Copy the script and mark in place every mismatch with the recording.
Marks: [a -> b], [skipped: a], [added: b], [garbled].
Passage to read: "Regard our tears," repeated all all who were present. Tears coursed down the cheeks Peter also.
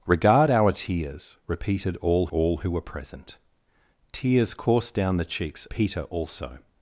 "Regard our tears," repeated all all who were present. Tears coursed down the cheeks Peter also.